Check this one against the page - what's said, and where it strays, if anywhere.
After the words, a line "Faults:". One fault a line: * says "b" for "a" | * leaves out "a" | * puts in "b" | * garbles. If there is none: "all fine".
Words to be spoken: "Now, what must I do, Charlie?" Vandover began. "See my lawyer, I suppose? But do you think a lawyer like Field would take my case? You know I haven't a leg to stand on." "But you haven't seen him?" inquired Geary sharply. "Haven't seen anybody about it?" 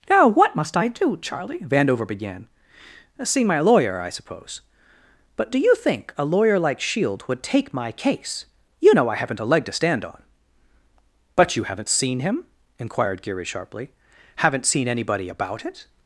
"Now, what must I do, Charlie?" Vandover began. "See my lawyer, I suppose? But do you think a lawyer like Shield would take my case? You know I haven't a leg to stand on." "But you haven't seen him?" inquired Geary sharply. "Haven't seen anybody about it?"
Faults:
* says "Shield" for "Field"